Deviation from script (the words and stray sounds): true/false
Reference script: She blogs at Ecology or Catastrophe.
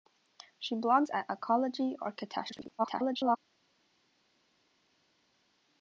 true